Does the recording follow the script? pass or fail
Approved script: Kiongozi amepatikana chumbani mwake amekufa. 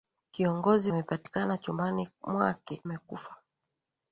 pass